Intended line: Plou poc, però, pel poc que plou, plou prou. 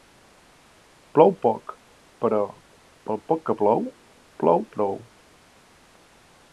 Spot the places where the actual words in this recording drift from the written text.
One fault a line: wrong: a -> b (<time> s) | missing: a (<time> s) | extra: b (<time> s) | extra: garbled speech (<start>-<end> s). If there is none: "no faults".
no faults